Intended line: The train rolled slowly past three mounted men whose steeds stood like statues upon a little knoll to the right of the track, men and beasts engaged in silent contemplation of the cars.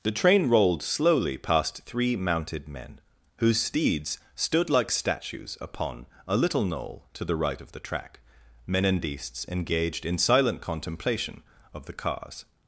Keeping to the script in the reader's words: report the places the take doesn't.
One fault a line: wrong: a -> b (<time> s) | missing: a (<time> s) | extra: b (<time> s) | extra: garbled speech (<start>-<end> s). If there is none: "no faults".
no faults